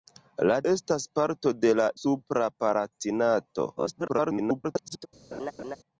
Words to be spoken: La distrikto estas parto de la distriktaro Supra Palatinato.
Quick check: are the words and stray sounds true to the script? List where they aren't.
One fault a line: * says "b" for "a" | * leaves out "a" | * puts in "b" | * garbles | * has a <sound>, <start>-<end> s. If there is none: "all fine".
* leaves out "distrikto"
* leaves out "distriktaro"
* garbles
* has a laugh, 5.3-5.8 s